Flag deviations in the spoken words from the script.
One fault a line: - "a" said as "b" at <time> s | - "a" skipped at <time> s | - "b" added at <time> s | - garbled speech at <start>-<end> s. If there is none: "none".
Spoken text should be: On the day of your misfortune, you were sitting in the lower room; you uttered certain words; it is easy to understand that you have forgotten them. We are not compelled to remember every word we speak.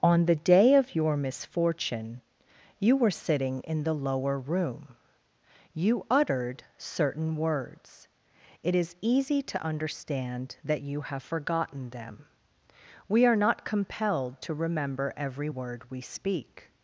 none